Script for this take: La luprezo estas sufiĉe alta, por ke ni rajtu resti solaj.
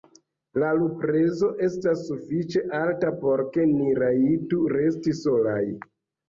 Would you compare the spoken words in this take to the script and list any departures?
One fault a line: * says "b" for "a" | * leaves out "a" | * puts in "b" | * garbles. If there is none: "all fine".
all fine